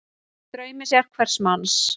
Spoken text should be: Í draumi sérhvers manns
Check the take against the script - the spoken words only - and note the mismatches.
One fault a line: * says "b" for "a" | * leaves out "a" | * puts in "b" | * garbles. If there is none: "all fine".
all fine